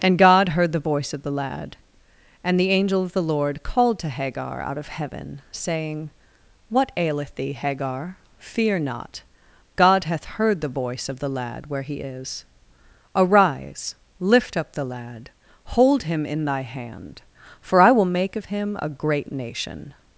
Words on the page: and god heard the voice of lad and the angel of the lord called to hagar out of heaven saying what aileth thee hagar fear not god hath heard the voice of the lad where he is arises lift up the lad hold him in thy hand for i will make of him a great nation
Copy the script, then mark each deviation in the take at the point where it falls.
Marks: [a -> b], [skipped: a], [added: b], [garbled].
and god heard the voice of [added: the] lad and the angel of the lord called to hagar out of heaven saying what aileth thee hagar fear not god hath heard the voice of the lad where he is [arises -> arise] lift up the lad hold him in thy hand for i will make of him a great nation